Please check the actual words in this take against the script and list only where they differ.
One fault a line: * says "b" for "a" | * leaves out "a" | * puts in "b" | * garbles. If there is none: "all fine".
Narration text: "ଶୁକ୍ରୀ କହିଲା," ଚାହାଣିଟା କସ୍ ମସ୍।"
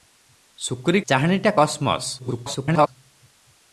* leaves out "କହିଲା"
* garbles